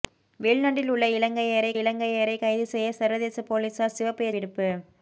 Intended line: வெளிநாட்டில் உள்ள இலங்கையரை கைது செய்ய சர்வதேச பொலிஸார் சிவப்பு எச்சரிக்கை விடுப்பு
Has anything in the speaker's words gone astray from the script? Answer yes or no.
yes